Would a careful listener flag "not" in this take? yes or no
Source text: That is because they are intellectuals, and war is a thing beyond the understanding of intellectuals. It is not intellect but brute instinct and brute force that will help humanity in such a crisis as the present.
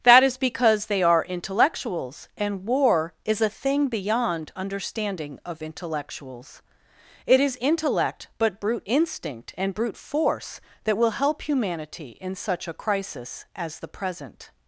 yes